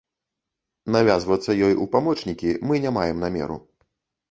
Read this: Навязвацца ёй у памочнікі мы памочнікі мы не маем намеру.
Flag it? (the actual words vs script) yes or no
yes